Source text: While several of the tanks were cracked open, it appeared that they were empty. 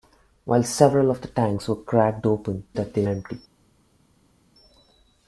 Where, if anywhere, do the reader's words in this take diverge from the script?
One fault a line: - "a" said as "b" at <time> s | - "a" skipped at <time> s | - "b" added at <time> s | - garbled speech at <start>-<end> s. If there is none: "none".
- "it appeared" skipped at 2.6 s
- "were" skipped at 3.0 s